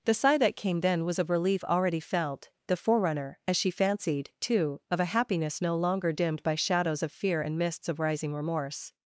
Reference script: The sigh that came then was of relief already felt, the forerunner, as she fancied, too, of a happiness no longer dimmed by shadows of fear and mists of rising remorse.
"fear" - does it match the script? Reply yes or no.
yes